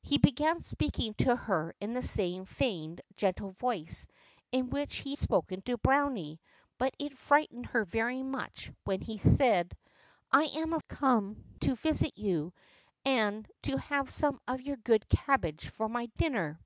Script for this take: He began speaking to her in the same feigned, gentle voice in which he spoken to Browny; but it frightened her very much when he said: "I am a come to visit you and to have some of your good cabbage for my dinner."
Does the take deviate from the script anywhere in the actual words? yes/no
no